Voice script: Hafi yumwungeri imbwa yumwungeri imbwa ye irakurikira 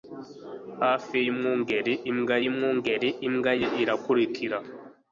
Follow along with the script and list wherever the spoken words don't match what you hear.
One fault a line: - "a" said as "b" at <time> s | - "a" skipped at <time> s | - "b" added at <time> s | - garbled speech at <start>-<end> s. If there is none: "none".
none